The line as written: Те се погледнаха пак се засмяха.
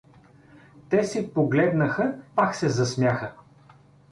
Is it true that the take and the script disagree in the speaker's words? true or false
false